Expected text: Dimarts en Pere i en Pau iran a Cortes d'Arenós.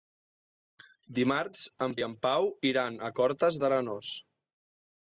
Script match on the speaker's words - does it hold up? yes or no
no